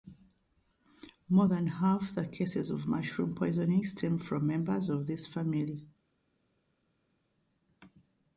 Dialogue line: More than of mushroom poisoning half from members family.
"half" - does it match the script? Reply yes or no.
no